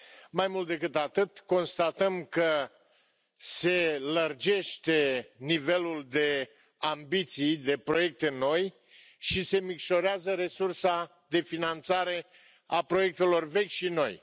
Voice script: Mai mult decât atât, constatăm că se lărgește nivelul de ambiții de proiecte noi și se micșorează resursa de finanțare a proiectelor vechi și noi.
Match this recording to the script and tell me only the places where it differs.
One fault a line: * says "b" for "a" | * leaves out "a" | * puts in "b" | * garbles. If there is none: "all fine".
all fine